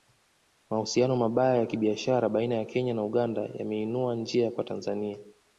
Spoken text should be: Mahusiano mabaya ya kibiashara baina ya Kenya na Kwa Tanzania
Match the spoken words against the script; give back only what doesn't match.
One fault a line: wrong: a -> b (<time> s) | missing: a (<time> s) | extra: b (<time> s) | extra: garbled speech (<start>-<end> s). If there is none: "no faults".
extra: Uganda yameinua njia (3.0 s)